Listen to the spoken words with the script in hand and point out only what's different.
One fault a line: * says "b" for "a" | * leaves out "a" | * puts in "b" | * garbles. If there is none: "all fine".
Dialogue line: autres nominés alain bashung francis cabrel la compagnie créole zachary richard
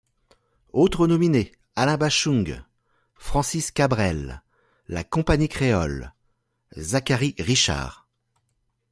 all fine